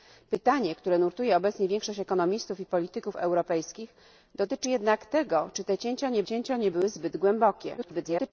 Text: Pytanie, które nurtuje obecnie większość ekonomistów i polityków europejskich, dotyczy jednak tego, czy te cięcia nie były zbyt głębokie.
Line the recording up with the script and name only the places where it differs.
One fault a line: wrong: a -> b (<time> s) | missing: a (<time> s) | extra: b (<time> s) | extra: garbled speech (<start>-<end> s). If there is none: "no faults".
extra: cięcia nie (6.2 s)
extra: garbled speech (7.8-8.3 s)